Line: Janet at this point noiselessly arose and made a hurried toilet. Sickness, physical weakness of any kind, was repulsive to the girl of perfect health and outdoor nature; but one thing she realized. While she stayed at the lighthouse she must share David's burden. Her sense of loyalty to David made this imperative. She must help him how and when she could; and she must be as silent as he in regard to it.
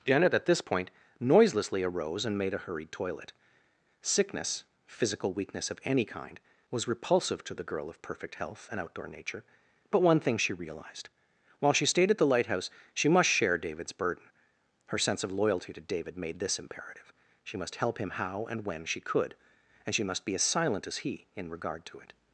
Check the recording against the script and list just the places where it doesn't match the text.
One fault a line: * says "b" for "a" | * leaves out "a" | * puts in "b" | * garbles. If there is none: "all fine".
all fine